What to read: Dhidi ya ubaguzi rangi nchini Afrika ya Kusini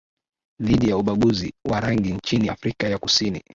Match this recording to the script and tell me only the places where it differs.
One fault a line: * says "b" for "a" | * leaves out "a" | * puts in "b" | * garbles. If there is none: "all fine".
* puts in "wa"